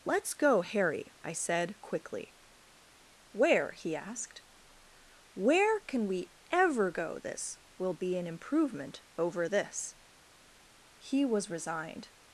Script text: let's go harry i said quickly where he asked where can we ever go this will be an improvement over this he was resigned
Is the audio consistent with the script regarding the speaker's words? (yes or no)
yes